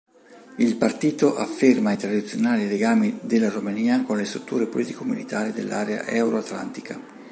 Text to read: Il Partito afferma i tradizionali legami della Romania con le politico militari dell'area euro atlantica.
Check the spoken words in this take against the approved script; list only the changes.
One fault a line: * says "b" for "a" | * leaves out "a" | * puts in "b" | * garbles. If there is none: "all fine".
* puts in "strutture"